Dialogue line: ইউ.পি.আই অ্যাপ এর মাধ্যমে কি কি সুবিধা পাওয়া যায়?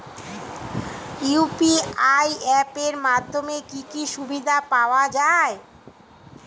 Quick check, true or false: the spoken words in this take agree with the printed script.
true